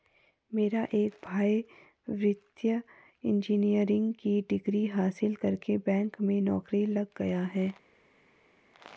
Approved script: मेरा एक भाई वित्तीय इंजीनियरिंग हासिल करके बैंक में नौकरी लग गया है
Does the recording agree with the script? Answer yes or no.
no